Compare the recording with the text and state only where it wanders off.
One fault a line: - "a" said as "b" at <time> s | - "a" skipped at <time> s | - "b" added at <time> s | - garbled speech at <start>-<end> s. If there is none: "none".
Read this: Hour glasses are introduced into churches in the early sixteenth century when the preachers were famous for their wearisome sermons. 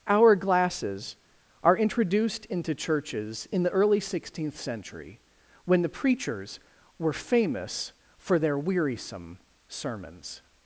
none